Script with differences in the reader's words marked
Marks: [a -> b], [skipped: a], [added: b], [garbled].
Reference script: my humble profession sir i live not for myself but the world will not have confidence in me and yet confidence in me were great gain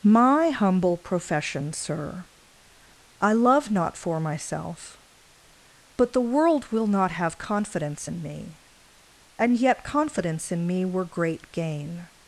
my humble profession sir i [live -> love] not for myself but the world will not have confidence in me and yet confidence in me were great gain